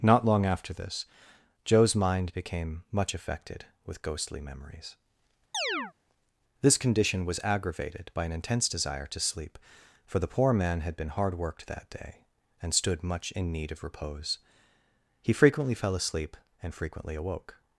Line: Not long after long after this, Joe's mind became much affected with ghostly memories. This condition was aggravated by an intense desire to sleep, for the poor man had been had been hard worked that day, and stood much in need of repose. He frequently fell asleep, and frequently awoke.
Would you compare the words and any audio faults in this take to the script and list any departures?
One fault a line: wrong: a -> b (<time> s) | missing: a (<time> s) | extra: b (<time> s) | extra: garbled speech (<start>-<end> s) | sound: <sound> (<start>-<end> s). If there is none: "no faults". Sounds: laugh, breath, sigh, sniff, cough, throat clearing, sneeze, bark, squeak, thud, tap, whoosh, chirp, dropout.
missing: long after (0.7 s)
sound: chirp (5.5-5.9 s)
missing: had been (11.1 s)